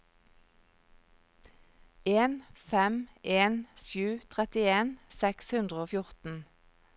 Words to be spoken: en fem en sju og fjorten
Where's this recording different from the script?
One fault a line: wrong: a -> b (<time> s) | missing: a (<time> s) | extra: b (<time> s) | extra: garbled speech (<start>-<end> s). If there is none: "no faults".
extra: trettien seks hundre (4.3 s)